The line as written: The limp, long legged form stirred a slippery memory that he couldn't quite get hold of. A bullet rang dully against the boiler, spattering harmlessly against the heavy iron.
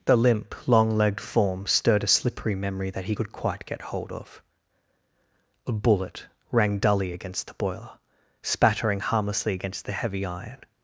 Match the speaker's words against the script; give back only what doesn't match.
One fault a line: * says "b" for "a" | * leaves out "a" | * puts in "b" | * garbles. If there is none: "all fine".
* says "could" for "couldn't"